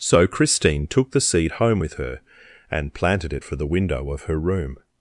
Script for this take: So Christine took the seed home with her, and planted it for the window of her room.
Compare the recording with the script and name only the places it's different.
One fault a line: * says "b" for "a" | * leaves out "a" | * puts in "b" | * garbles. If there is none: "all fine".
all fine